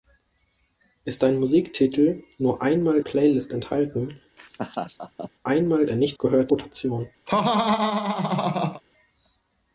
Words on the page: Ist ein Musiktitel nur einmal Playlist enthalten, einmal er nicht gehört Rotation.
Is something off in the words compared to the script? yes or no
no